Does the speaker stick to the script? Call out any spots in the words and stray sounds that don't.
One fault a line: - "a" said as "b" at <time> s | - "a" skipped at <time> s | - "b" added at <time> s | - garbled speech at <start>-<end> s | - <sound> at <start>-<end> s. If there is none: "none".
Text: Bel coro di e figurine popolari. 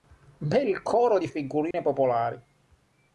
- dropout at 1.7-1.7 s